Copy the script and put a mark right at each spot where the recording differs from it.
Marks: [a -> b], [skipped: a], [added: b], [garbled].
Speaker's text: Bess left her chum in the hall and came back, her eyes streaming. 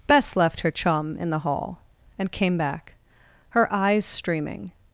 Bess left her chum in the hall and came back, her eyes streaming.